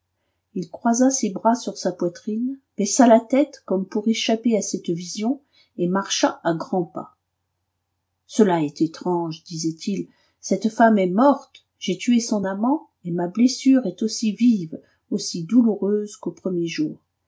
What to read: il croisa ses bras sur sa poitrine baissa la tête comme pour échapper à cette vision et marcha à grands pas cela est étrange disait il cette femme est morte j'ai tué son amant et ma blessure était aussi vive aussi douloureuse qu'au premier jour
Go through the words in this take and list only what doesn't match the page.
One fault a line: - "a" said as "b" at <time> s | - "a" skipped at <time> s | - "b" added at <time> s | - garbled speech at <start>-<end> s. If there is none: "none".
- "était" said as "est" at 13.9 s